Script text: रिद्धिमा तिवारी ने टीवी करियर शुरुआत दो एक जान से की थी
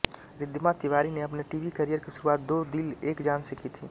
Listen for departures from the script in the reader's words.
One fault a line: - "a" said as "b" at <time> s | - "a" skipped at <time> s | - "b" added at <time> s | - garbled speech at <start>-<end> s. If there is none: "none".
- "अपने" added at 1.2 s
- "की" added at 2.0 s
- "दिल" added at 2.7 s